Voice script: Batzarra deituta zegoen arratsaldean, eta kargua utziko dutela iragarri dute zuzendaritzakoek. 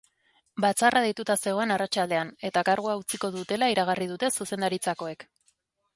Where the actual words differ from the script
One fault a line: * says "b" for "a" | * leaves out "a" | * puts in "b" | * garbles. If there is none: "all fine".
all fine